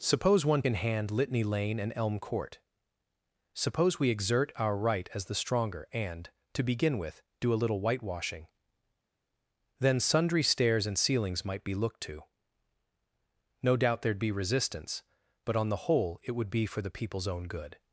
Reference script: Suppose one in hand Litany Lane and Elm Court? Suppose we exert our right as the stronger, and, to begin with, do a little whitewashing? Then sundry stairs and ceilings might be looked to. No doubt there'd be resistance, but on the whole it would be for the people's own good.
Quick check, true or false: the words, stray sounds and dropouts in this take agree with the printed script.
true